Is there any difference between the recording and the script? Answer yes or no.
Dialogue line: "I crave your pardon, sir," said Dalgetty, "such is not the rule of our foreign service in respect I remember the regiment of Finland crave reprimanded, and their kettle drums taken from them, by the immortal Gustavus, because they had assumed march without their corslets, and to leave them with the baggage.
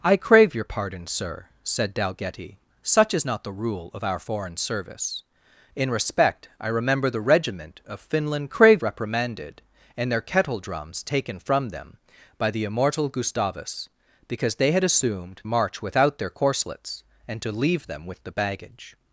no